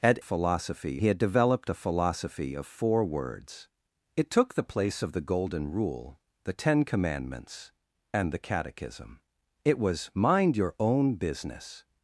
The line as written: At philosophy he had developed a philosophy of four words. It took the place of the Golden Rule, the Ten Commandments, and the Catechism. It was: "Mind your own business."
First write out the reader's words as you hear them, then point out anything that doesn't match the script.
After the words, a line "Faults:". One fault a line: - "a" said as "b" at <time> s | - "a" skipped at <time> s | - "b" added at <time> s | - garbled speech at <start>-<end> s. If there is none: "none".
At philosophy he had developed a philosophy of four words. It took the place of the Golden Rule, the Ten Commandments, and the Catechism. It was: "Mind your own business."
Faults:
none